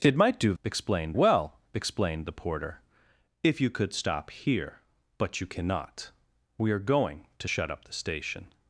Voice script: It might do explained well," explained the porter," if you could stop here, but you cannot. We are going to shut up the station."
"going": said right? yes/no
yes